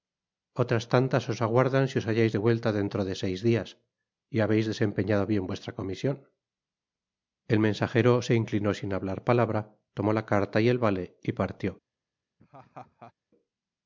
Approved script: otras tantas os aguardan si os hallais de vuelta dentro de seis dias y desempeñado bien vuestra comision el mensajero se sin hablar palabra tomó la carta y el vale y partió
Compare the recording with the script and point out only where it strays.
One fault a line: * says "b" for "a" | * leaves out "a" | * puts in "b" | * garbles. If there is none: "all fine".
* puts in "habeis"
* puts in "inclinó"